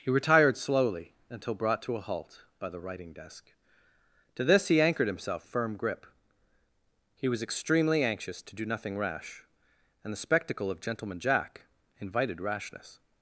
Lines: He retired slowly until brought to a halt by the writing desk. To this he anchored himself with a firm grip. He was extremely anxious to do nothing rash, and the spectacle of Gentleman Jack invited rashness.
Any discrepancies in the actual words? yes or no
yes